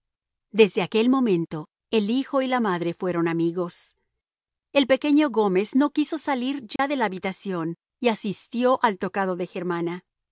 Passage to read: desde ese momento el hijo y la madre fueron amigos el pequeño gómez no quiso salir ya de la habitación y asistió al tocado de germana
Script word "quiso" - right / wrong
right